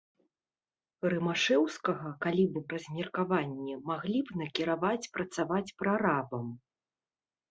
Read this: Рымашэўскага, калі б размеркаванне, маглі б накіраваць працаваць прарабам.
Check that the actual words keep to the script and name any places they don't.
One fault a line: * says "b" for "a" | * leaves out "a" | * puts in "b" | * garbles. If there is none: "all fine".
all fine